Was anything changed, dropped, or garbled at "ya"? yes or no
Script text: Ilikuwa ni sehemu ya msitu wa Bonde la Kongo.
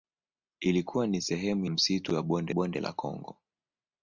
yes